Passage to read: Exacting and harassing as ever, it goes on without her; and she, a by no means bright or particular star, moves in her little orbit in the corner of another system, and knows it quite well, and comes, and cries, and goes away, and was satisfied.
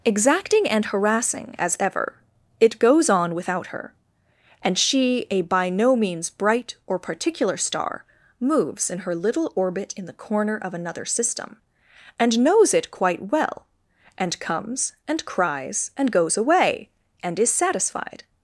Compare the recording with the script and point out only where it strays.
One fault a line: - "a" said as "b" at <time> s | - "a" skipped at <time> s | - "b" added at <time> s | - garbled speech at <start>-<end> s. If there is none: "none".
- "was" said as "is" at 17.4 s